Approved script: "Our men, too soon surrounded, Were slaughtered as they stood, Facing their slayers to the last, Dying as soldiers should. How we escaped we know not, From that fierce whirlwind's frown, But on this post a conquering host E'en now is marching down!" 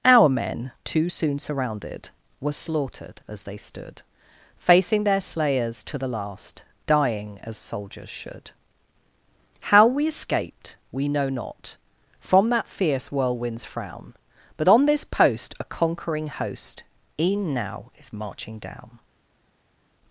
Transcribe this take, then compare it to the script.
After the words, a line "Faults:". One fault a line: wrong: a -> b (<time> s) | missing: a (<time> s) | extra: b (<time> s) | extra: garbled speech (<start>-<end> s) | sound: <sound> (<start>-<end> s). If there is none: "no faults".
"Our men, too soon surrounded, Were slaughtered as they stood, Facing their slayers to the last, Dying as soldiers should. How we escaped we know not, From that fierce whirlwind's frown, But on this post a conquering host E'en now is marching down!"
Faults:
no faults